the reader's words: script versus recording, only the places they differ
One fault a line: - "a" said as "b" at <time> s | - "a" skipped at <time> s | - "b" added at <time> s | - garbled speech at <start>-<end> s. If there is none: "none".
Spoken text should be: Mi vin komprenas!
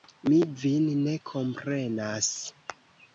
- "ne" added at 1.0 s